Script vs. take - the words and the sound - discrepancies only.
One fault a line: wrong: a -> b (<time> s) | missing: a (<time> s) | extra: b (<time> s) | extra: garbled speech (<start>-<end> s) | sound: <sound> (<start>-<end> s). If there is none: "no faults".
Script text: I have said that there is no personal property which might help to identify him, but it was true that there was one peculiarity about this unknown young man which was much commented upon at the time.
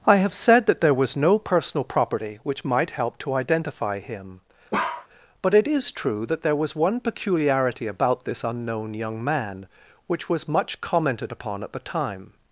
wrong: is -> was (0.9 s)
sound: bark (4.7-5.1 s)
wrong: was -> is (5.7 s)